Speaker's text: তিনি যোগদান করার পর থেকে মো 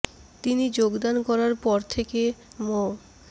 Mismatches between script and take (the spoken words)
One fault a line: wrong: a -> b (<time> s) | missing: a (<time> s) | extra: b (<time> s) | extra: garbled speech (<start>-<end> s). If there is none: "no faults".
no faults